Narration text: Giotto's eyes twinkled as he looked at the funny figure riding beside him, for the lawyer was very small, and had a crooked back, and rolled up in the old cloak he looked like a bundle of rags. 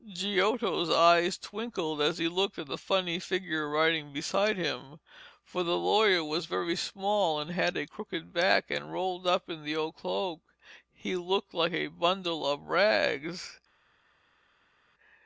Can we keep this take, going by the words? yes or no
yes